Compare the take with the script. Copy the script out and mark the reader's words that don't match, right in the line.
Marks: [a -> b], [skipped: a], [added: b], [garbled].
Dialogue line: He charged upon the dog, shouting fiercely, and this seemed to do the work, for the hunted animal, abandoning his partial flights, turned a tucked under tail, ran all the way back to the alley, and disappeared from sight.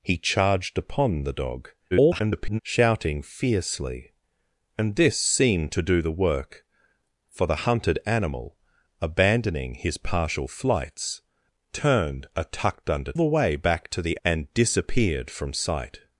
He charged upon the dog, [garbled] shouting fiercely, and this seemed to do the work, for the hunted animal, abandoning his partial flights, turned a tucked under [skipped: tail, ran all] the way back to the [skipped: alley,] and disappeared from sight.